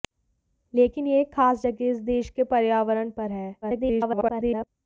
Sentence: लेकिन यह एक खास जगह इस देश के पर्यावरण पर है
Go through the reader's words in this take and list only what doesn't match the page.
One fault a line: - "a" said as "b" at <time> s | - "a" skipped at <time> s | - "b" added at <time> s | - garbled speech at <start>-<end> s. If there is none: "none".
- garbled speech at 3.6-4.7 s